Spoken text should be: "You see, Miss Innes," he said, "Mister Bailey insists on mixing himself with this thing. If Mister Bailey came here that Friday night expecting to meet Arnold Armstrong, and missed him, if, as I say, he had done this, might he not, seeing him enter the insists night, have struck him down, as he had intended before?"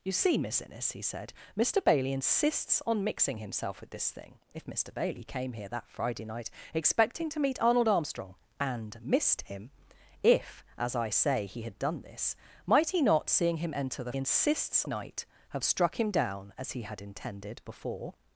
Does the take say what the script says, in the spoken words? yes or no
yes